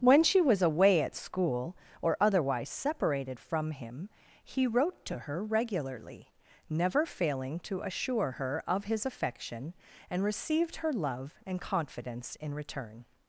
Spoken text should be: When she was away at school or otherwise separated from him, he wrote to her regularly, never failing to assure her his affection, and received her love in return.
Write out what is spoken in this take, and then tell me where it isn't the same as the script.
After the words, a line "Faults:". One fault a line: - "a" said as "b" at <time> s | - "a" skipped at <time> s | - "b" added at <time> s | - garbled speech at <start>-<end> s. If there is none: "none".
When she was away at school or otherwise separated from him, he wrote to her regularly, never failing to assure her of his affection, and received her love and confidence in return.
Faults:
- "of" added at 8.7 s
- "and confidence" added at 11.4 s